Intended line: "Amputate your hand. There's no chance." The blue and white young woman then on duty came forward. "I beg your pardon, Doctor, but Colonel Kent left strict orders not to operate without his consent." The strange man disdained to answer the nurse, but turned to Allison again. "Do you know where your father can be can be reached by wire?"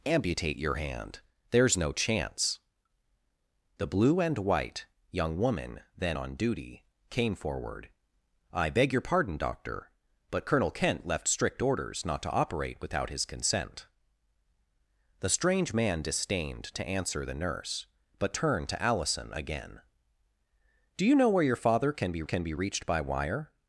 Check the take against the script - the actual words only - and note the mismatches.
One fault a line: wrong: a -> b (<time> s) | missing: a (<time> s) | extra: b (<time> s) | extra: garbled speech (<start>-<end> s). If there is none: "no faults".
no faults